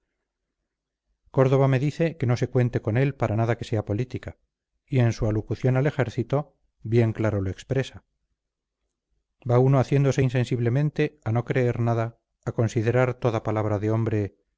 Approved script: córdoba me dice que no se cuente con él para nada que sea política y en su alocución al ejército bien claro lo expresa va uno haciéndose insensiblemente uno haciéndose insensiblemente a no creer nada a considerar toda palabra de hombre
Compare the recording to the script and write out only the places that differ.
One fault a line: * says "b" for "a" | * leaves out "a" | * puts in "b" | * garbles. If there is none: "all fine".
* leaves out "uno haciéndose insensiblemente"